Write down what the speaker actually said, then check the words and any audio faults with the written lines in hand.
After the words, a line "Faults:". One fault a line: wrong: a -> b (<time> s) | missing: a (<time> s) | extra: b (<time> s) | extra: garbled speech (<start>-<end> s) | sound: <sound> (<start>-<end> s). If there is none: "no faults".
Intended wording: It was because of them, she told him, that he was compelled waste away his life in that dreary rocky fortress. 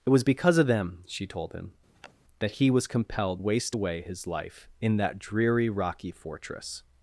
It was because of them, she told him, that he was compelled waste away his life in that dreary rocky fortress.
Faults:
sound: sniff (1.9-2.1 s)